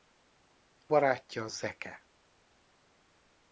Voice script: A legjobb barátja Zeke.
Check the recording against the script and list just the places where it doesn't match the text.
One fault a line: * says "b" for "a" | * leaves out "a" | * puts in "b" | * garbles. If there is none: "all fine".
* leaves out "legjobb"